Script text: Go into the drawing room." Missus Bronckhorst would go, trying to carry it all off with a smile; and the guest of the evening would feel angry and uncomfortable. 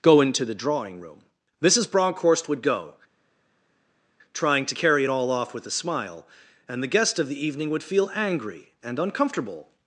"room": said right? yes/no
yes